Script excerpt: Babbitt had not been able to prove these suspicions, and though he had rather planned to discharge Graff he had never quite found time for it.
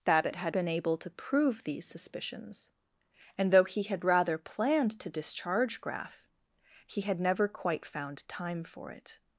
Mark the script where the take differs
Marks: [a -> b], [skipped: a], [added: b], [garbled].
Babbitt had [skipped: not] been able to prove these suspicions, and though he had rather planned to discharge Graff he had never quite found time for it.